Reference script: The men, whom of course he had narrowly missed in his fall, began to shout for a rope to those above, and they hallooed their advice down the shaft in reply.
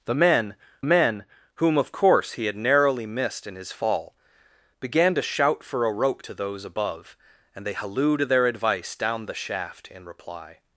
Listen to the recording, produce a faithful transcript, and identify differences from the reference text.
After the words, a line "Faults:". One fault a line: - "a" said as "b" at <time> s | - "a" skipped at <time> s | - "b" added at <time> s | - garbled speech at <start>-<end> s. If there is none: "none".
The men men, whom of course he had narrowly missed in his fall, began to shout for a rope to those above, and they hallooed their advice down the shaft in reply.
Faults:
- "men" added at 0.8 s